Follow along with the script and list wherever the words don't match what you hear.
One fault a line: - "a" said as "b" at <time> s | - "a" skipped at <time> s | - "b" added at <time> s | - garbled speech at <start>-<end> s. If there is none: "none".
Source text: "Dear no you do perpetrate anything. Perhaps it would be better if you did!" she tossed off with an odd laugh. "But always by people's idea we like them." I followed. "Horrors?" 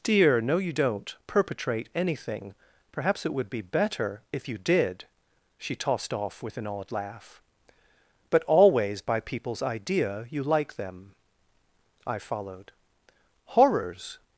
- "do" said as "don't" at 0.7 s
- "we" said as "you" at 10.3 s